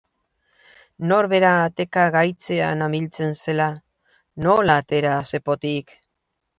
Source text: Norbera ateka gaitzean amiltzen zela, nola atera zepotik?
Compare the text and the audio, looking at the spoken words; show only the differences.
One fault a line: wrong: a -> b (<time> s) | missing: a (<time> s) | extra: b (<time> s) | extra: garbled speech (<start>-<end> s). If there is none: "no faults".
no faults